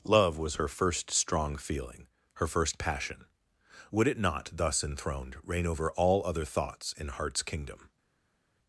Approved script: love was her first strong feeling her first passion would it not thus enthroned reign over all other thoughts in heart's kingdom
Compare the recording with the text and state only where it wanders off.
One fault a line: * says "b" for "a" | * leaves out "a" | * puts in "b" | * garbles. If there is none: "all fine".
all fine